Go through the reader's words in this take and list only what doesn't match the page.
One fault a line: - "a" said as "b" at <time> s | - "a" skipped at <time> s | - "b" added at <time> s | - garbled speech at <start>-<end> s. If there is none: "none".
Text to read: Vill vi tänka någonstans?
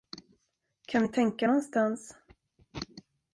- "Vill" said as "Kan" at 0.9 s